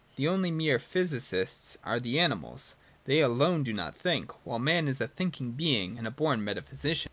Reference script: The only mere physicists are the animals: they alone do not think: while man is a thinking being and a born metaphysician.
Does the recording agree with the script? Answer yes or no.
yes